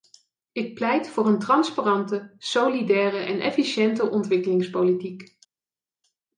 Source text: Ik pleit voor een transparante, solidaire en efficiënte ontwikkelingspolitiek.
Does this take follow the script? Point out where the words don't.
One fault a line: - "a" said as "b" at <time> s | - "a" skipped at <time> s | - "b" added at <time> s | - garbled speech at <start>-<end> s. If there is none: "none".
none